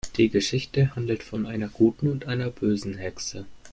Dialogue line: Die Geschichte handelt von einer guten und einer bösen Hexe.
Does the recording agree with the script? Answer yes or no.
yes